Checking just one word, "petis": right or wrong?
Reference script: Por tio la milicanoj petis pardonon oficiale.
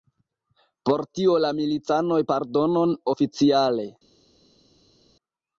wrong